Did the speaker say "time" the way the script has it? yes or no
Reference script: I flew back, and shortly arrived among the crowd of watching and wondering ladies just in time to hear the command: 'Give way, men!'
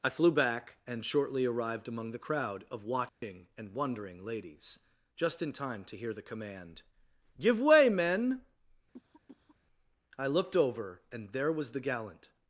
yes